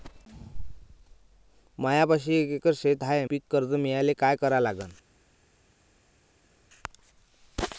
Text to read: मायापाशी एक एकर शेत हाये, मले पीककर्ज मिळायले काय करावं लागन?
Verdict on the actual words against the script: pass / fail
fail